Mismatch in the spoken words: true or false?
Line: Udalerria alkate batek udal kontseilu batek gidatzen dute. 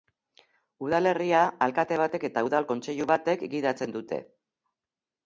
true